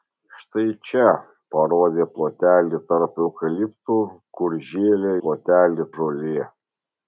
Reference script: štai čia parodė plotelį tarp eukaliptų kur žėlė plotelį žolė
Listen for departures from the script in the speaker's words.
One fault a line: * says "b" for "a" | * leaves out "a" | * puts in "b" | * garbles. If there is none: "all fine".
all fine